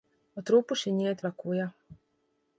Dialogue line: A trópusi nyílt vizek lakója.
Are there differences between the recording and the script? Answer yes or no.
yes